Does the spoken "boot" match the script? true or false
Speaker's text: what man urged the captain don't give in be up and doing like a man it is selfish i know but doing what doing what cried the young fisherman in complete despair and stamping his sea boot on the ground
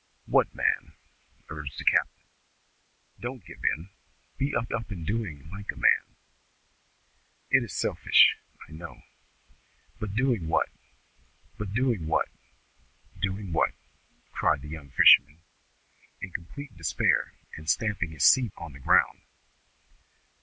false